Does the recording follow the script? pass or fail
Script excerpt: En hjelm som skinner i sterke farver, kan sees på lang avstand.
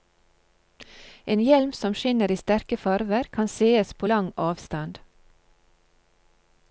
pass